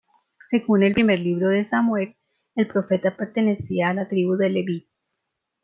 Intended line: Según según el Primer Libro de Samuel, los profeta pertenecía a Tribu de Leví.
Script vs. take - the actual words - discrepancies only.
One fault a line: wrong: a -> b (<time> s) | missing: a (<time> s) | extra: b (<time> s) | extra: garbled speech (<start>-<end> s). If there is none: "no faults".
missing: según (0.8 s)
wrong: los -> el (2.5 s)
extra: la (3.9 s)